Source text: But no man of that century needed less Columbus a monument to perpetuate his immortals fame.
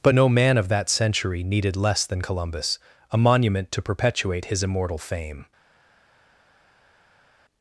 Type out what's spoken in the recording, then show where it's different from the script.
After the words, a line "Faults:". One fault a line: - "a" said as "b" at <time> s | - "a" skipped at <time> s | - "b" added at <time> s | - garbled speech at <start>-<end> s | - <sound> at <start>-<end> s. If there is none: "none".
But no man of that century needed less than Columbus a monument to perpetuate his immortal fame.
Faults:
- "than" added at 2.0 s
- "immortals" said as "immortal" at 4.6 s